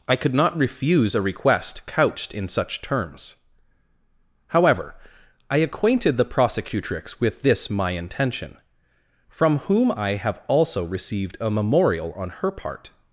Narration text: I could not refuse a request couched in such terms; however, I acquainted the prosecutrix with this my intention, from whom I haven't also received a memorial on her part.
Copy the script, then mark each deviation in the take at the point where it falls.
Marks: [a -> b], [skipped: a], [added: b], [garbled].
I could not refuse a request couched in such terms; however, I acquainted the prosecutrix with this my intention, from whom I [haven't -> have] also received a memorial on her part.